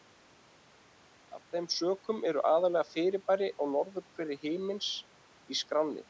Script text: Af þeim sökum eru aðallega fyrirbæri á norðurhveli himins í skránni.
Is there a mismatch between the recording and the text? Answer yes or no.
no